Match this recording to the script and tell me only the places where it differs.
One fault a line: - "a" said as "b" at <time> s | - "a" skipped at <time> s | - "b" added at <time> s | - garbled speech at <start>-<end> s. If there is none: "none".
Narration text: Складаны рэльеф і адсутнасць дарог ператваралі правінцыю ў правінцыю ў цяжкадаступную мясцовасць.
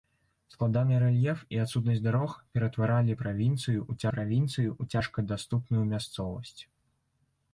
none